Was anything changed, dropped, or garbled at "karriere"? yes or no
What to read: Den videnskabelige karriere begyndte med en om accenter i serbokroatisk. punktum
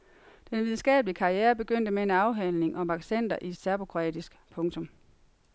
no